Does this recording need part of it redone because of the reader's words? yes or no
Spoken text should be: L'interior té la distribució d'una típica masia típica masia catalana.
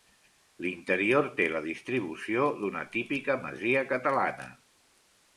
yes